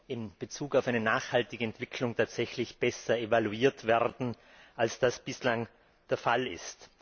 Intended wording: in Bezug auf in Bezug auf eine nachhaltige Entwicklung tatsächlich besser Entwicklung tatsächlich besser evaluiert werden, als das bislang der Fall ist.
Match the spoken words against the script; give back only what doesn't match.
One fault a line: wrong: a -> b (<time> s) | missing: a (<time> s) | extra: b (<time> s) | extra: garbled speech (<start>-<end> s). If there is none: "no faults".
missing: in Bezug auf (0.9 s)
missing: Entwicklung tatsächlich besser (3.2 s)